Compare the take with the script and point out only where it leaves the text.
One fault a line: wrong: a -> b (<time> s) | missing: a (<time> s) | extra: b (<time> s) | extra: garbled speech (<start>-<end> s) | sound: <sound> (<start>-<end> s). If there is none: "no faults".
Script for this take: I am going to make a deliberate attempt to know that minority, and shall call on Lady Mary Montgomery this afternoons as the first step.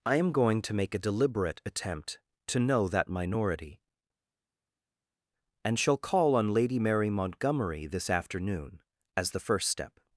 wrong: afternoons -> afternoon (8.1 s)